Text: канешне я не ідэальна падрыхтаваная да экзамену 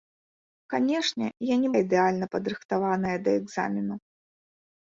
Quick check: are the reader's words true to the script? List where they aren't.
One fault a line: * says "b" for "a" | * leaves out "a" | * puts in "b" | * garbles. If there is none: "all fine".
all fine